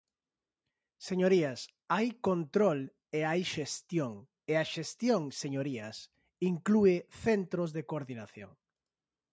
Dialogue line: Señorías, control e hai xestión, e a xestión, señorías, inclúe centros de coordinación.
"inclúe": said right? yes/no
yes